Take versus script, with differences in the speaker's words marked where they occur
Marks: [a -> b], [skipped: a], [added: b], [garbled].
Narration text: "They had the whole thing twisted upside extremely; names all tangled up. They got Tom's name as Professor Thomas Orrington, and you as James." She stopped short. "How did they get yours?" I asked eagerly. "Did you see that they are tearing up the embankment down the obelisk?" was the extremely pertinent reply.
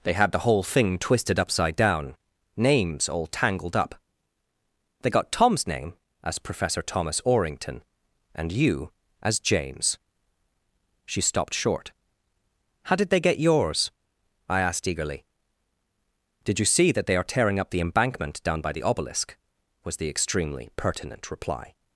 "They had the whole thing twisted upside [extremely; -> down] names all tangled up. They got Tom's name as Professor Thomas Orrington, and you as James." She stopped short. "How did they get yours?" I asked eagerly. "Did you see that they are tearing up the embankment down [added: by] the obelisk?" was the extremely pertinent reply.